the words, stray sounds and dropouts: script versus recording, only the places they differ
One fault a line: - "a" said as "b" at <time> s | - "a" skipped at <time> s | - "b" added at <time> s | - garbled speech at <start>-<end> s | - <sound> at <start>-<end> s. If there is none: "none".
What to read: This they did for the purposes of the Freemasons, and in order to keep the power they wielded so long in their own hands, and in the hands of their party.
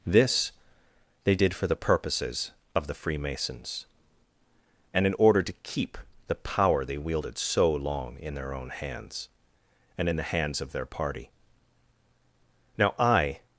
- "Now I" added at 12.8 s